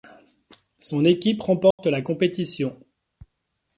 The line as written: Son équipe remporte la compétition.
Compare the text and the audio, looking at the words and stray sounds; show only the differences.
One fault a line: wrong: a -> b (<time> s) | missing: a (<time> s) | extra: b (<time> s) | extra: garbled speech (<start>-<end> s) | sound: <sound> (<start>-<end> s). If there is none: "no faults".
sound: dropout (1.7-1.8 s)